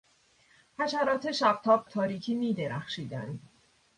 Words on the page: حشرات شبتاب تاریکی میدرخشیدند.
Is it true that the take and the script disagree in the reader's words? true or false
false